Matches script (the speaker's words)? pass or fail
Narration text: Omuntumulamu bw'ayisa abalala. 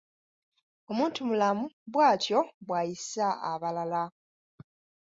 fail